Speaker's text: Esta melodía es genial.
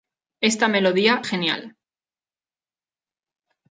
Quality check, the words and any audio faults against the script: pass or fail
fail